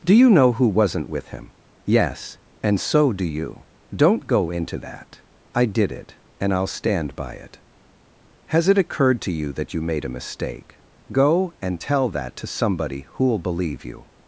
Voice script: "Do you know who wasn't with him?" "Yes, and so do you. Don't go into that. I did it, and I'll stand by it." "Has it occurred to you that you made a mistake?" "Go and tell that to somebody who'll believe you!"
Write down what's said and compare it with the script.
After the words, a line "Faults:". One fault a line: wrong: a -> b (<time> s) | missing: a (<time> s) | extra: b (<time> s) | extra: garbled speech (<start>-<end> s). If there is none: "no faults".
"Do you know who wasn't with him?" "Yes, and so do you. Don't go into that. I did it, and I'll stand by it." "Has it occurred to you that you made a mistake?" "Go and tell that to somebody who'll believe you!"
Faults:
no faults